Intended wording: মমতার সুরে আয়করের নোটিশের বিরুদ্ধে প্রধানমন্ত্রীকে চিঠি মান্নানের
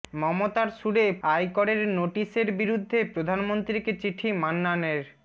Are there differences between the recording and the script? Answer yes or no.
no